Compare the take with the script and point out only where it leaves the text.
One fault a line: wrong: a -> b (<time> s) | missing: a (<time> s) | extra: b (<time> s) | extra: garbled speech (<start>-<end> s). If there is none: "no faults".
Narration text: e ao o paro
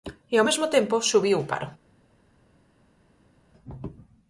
extra: mesmo tempo subiu (0.5 s)